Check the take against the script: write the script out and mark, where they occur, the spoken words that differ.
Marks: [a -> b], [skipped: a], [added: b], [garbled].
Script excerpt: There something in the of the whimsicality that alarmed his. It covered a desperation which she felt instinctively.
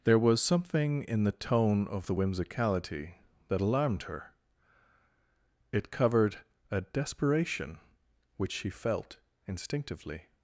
There [added: was] something in the [added: tone] of the whimsicality that alarmed [his. -> her] It covered a desperation which she felt instinctively.